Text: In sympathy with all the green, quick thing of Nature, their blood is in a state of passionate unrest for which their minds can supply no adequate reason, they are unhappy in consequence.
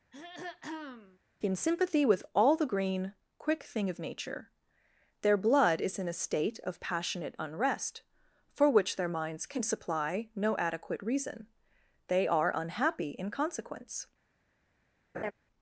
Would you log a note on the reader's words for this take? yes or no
no